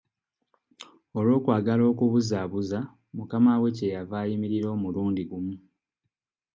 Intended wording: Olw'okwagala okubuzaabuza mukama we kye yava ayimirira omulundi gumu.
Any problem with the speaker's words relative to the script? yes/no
no